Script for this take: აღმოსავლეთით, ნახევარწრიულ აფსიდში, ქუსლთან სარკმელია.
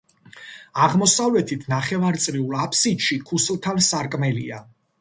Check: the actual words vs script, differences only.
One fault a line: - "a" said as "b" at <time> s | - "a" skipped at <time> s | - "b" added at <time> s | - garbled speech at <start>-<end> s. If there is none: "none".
none